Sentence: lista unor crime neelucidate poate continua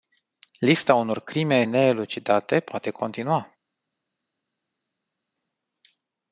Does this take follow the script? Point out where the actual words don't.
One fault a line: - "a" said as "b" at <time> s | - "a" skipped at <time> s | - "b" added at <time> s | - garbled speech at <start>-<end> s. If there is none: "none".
none